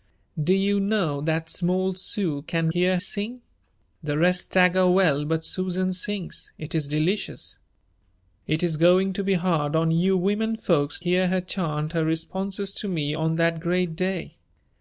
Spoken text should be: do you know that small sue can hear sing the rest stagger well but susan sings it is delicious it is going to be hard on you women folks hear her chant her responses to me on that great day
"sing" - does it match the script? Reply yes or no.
yes